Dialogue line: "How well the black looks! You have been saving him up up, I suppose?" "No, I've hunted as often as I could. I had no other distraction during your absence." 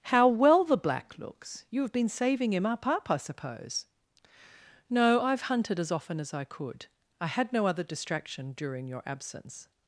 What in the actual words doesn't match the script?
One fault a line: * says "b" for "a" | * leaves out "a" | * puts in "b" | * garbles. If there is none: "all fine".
all fine